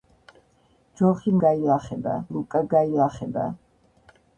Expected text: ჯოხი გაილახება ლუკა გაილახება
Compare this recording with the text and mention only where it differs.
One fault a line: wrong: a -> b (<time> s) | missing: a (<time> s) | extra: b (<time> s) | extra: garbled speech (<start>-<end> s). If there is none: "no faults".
no faults